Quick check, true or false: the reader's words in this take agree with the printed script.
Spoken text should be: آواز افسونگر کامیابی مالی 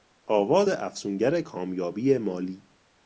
true